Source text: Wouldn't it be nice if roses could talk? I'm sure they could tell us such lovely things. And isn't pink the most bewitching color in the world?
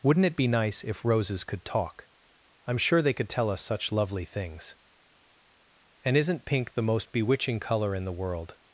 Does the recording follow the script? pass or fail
pass